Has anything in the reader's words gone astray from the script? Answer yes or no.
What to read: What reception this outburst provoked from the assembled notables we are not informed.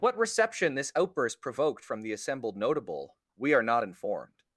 yes